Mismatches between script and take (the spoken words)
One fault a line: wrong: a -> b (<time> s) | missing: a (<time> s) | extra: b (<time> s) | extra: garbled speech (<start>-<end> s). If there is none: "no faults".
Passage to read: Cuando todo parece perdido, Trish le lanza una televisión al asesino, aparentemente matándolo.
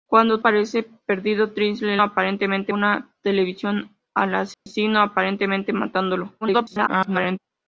missing: todo (0.4 s)
wrong: lanza -> aparentemente (2.0 s)
extra: garbled speech (6.4-7.4 s)